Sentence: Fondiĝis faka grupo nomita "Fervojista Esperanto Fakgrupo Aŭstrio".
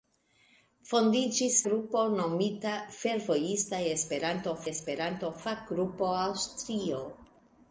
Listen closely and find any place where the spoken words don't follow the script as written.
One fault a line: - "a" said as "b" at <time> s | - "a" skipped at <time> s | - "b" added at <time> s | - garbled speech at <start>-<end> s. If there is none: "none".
- "faka" skipped at 1.6 s
- "Esperanto" added at 4.7 s